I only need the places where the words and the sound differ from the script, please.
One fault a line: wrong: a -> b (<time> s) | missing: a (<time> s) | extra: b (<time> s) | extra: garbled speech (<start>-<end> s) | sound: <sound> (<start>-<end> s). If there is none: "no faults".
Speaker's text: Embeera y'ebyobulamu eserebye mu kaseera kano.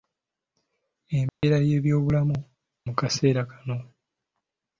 sound: dropout (1.3-1.4 s)
missing: eserebye (2.4 s)